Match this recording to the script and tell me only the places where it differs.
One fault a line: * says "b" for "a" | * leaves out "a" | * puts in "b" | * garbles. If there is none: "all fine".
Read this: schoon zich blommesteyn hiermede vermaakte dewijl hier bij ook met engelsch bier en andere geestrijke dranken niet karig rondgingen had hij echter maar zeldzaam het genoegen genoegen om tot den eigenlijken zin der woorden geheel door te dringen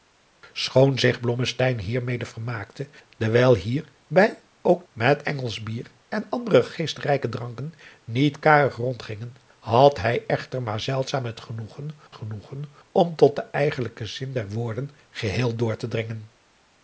all fine